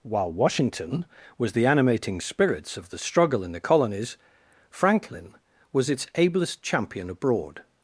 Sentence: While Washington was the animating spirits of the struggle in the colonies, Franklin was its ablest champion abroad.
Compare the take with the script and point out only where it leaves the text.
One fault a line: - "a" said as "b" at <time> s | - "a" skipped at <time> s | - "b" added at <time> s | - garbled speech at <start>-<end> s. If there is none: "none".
none